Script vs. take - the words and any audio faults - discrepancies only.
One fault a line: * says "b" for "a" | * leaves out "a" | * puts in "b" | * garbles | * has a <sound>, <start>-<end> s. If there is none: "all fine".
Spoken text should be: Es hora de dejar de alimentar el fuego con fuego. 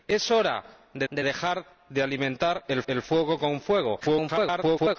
* puts in "de"
* puts in "el"
* garbles